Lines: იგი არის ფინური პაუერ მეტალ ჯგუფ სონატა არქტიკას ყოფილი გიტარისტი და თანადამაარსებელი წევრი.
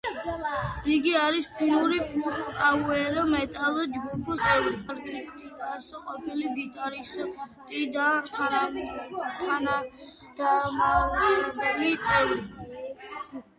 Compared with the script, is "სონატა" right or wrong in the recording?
wrong